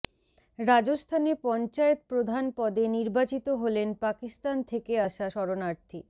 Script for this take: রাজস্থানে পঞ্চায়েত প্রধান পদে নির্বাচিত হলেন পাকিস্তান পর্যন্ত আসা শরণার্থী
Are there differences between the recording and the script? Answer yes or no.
yes